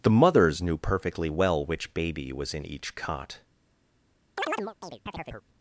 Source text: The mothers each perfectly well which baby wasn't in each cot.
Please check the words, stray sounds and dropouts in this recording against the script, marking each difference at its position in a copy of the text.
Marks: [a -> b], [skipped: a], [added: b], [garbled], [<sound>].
The mothers [each -> knew] perfectly well which baby [wasn't -> was] in each cot. [chirp]